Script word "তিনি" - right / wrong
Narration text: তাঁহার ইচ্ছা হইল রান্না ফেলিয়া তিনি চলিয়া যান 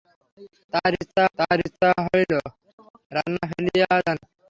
wrong